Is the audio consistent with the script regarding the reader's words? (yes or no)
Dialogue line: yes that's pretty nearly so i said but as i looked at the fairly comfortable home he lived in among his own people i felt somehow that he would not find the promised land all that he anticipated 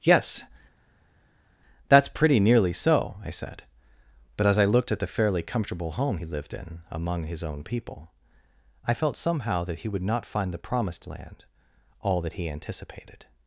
yes